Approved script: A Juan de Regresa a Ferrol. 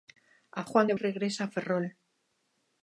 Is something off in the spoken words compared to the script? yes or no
no